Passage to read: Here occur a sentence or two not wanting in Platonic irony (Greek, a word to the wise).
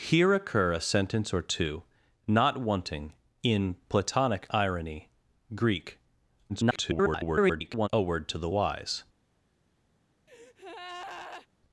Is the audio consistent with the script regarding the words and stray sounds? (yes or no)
no